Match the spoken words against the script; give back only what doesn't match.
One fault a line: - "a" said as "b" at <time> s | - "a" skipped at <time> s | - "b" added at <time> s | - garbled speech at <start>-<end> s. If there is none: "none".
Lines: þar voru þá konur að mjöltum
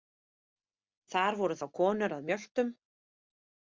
none